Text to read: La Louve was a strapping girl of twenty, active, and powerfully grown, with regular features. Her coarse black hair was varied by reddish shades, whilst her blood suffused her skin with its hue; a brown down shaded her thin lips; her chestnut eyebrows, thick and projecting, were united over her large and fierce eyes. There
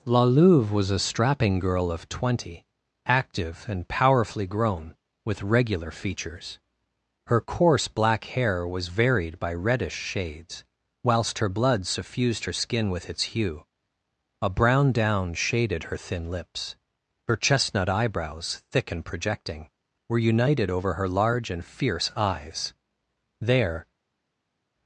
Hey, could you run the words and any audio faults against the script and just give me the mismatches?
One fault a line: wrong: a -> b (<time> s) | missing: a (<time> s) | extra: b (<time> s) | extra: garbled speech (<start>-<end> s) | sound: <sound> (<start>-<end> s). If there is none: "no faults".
no faults